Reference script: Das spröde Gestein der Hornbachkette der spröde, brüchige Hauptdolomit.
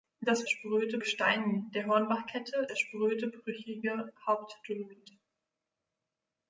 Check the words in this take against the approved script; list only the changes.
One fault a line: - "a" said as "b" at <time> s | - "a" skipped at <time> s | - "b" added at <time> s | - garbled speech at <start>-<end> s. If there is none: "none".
none